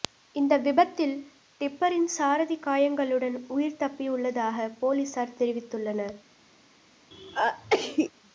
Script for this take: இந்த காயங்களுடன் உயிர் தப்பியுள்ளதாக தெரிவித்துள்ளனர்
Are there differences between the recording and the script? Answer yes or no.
yes